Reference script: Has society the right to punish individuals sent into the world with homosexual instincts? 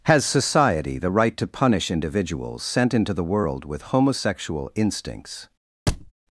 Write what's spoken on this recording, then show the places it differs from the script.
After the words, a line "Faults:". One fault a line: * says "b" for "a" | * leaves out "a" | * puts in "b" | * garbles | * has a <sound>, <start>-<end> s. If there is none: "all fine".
Has society the right to punish individuals sent into the world with homosexual instincts?
Faults:
* has a thud, 5.9-6.1 s